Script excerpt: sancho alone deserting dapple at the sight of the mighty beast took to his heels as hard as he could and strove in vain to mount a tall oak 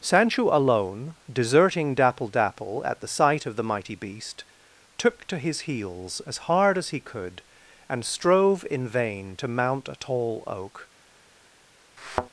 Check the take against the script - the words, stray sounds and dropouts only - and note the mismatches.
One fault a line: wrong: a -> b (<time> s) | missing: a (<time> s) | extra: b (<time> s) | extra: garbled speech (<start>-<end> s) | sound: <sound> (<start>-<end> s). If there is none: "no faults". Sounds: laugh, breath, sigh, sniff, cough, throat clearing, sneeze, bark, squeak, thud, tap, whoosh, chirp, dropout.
extra: dapple (2.3 s)
sound: thud (12.0-12.3 s)